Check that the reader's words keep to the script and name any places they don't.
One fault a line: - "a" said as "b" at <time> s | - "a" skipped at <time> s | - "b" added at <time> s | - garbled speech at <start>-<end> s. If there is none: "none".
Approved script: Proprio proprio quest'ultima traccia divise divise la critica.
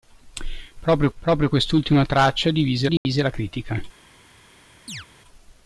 none